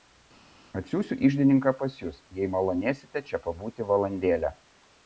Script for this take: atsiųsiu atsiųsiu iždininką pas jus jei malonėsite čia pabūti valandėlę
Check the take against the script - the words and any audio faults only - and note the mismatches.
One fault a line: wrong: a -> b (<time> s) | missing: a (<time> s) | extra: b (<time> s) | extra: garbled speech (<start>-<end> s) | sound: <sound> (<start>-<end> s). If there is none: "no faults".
missing: atsiųsiu (1.2 s)